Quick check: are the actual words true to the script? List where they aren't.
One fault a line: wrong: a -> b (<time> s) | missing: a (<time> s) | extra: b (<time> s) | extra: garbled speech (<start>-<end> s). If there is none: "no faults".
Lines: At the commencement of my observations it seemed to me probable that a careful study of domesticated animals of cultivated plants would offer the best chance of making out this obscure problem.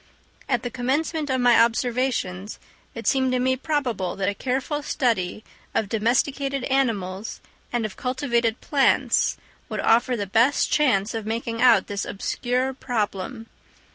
extra: and (7.7 s)